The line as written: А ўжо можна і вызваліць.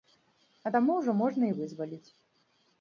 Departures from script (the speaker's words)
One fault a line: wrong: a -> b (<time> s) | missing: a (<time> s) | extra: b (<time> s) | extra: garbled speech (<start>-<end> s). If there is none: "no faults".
extra: таму (0.7 s)